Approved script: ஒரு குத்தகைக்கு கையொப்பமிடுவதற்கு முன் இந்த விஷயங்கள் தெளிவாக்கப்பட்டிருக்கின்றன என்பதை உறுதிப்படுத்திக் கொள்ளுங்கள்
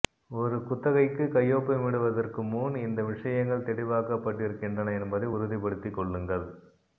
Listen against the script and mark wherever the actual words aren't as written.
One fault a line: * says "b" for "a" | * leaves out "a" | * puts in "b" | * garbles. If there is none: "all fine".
all fine